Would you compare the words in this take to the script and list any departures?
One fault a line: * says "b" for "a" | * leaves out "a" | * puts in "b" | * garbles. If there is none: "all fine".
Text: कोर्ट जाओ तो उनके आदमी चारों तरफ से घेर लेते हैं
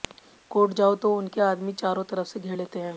all fine